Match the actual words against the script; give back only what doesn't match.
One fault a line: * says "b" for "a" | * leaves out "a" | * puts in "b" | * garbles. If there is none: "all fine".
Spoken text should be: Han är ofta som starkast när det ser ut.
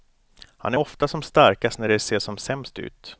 * puts in "som sämst"